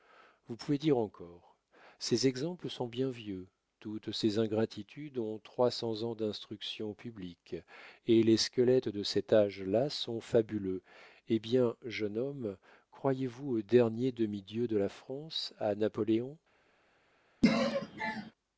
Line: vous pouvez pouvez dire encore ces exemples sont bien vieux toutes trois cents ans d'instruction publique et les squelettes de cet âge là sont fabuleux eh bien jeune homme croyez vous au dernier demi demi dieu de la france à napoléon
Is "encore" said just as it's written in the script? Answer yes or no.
yes